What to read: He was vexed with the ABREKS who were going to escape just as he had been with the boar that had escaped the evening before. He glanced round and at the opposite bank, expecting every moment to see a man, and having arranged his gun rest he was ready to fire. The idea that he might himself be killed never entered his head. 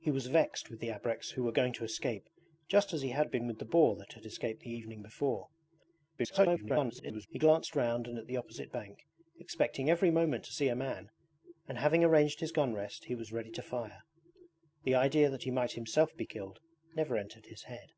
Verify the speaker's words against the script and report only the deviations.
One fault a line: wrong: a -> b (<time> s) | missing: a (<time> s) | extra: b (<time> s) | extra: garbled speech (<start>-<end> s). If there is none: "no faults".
extra: garbled speech (6.2-7.3 s)